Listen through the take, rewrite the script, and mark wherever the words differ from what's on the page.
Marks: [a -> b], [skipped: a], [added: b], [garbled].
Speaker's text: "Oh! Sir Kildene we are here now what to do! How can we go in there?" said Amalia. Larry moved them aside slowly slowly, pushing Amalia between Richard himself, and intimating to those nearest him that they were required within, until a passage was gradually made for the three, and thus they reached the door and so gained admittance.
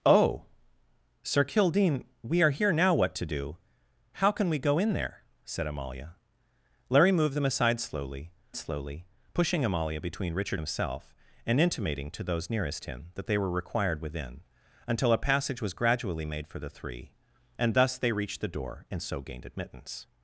"Oh! Sir Kildene we are here now what to do! How can we go in there?" said Amalia. Larry moved them aside slowly slowly, pushing Amalia between Richard himself, and intimating to those nearest him that they were required within, until a passage was gradually made for the three, and thus they reached the door and so gained admittance.